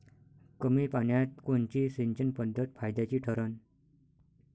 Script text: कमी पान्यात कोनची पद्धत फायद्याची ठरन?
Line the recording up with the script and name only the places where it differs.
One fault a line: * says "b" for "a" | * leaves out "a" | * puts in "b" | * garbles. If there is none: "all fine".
* puts in "सिंचन"